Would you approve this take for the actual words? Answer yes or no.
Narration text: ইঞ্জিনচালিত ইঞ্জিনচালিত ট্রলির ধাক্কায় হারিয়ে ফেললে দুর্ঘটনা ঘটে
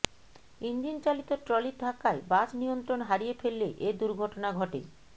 no